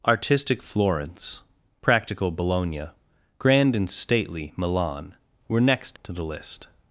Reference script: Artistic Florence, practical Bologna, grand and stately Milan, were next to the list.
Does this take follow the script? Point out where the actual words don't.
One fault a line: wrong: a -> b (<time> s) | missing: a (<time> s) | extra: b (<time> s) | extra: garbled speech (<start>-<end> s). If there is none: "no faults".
no faults